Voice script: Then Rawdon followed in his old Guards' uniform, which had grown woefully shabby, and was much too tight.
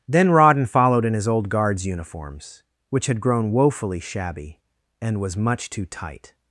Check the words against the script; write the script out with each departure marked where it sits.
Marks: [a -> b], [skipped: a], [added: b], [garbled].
Then Rawdon followed in his old Guards' [uniform, -> uniforms] which had grown woefully shabby, and was much too tight.